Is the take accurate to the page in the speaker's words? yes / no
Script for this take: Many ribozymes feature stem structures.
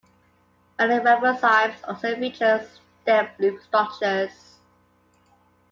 no